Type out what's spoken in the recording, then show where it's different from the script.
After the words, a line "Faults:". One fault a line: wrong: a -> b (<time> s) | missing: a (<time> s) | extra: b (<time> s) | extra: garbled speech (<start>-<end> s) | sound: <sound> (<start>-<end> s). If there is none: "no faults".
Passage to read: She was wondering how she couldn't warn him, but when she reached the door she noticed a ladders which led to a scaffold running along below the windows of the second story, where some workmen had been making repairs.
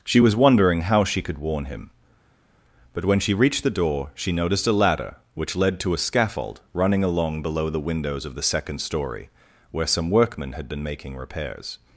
She was wondering how she could warn him, but when she reached the door she noticed a ladder which led to a scaffold running along below the windows of the second story, where some workmen had been making repairs.
Faults:
wrong: couldn't -> could (1.2 s)
wrong: ladders -> ladder (4.7 s)